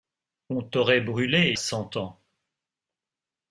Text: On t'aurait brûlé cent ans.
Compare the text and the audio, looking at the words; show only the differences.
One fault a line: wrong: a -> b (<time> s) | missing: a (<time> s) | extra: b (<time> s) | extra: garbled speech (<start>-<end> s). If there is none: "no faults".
no faults